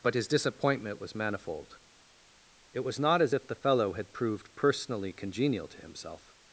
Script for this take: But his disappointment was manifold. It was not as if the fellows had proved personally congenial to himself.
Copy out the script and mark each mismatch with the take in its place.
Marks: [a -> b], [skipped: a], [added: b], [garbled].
But his disappointment was manifold. It was not as if the [fellows -> fellow] had proved personally congenial to himself.